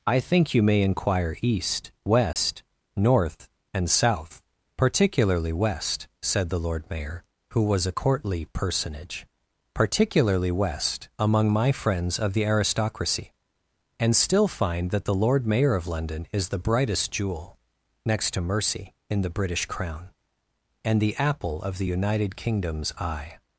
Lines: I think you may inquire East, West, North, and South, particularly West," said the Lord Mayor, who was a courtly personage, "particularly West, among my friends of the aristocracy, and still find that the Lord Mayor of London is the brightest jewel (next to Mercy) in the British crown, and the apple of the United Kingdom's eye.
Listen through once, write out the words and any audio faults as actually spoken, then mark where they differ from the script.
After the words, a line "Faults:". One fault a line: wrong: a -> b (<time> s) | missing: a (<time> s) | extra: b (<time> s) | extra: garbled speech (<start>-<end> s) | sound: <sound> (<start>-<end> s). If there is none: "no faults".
I think you may inquire East, West, North, and South, particularly West," said the Lord Mayor, who was a courtly personage, "particularly West, among my friends of the aristocracy, and still find that the Lord Mayor of London is the brightest jewel (next to Mercy) in the British crown, and the apple of the United Kingdom's eye.
Faults:
sound: dropout (2.3-2.4 s)